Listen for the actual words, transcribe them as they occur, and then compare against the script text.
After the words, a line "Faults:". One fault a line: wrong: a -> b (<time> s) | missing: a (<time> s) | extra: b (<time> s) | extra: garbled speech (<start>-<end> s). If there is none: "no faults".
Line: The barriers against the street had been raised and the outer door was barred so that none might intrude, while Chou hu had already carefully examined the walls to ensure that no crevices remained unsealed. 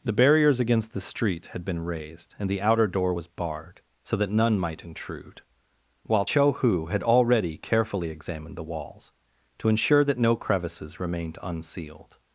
The barriers against the street had been raised and the outer door was barred so that none might intrude, while Chou hu had already carefully examined the walls to ensure that no crevices remained unsealed.
Faults:
no faults